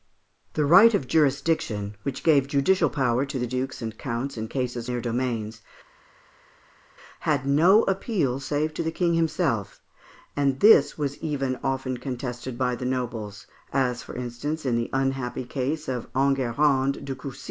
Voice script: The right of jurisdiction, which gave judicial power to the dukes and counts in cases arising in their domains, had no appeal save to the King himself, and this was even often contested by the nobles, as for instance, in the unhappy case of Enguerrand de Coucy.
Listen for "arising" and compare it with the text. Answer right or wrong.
wrong